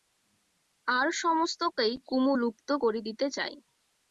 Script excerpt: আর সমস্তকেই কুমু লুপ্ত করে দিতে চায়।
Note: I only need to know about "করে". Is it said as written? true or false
true